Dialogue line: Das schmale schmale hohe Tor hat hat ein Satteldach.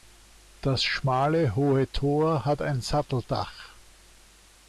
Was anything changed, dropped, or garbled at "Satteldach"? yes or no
no